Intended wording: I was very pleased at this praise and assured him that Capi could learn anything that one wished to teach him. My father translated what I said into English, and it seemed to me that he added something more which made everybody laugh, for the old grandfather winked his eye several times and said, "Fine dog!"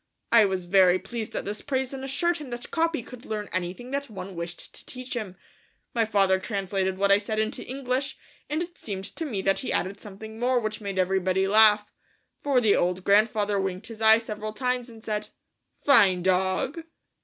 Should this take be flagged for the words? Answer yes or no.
no